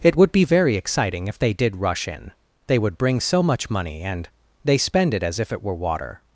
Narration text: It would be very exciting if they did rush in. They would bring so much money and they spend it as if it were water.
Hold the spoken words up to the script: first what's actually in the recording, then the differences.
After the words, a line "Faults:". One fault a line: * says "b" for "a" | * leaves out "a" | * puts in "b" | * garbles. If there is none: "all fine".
It would be very exciting if they did rush in. They would bring so much money and they spend it as if it were water.
Faults:
all fine